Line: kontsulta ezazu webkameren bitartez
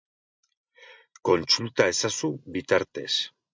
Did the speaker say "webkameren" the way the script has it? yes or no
no